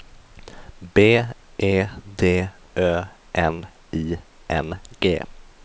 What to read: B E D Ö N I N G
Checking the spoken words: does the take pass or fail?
pass